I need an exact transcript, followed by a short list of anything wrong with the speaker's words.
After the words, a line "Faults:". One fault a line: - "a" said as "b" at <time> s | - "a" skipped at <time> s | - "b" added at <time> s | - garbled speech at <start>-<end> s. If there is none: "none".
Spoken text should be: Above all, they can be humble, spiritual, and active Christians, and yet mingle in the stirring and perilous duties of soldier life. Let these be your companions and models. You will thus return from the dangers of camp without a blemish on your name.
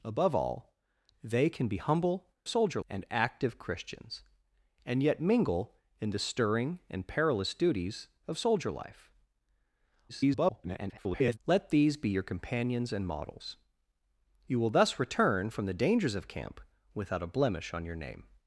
Above all, they can be humble, soldier, and active Christians, and yet mingle in the stirring and perilous duties of soldier life. [garbled] Let these be your companions and models. You will thus return from the dangers of camp without a blemish on your name.
Faults:
- "spiritual" said as "soldier" at 2.5 s
- garbled speech at 10.1-11.4 s